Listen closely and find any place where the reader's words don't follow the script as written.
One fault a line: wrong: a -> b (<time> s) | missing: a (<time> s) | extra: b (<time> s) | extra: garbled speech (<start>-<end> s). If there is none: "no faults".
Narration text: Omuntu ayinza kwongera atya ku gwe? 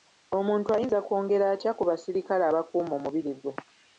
extra: basirikale abakuuma omubiri (1.9 s)